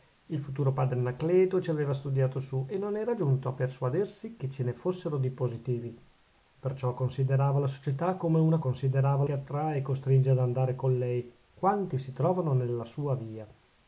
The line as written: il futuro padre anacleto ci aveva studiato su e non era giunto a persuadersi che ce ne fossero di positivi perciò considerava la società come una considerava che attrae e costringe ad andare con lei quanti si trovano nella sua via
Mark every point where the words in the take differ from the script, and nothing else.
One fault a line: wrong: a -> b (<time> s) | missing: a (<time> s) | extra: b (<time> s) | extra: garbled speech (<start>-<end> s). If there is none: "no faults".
no faults